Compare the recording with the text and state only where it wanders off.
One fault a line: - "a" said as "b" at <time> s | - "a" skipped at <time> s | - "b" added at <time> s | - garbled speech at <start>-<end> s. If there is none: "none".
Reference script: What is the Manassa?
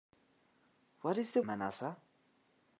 none